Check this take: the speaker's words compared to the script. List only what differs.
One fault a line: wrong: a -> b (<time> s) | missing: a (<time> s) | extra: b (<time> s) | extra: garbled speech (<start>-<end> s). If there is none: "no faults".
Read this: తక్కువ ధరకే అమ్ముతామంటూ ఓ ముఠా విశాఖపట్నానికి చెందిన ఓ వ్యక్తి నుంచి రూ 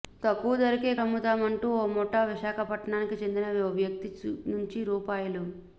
no faults